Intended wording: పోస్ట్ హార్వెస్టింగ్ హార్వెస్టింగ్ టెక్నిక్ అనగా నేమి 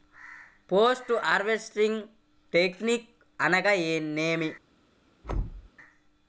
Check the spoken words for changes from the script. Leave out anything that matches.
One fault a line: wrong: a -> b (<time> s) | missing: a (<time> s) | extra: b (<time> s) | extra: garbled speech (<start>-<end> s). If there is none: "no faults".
missing: హార్వెస్టింగ్ (2.0 s)